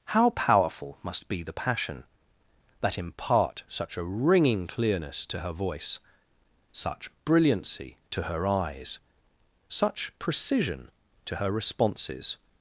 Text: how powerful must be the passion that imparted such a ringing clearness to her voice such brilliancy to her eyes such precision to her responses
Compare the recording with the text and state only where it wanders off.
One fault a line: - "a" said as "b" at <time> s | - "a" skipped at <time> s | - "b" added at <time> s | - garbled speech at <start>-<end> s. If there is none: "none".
- "imparted" said as "impart" at 3.0 s